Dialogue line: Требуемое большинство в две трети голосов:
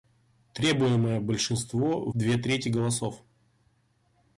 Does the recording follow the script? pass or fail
fail